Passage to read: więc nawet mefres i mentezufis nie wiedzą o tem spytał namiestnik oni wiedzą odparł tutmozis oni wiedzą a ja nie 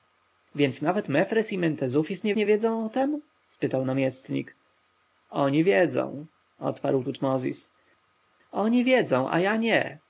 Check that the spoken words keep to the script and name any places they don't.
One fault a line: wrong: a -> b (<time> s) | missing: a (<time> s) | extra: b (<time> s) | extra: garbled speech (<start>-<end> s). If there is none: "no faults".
extra: nie (2.3 s)